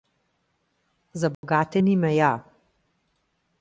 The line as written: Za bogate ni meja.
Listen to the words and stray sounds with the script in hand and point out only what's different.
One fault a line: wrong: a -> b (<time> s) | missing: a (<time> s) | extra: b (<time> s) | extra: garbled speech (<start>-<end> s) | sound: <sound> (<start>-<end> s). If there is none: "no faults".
sound: dropout (1.3-1.4 s)